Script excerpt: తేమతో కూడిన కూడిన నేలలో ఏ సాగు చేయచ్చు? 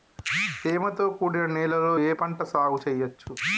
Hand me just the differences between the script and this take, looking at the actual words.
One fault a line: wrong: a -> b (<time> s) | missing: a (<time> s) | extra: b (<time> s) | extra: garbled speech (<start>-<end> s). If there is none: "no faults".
missing: కూడిన (1.4 s)
extra: పంట (2.1 s)